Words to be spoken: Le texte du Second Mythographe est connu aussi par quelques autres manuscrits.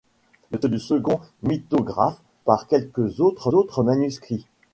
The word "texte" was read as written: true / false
false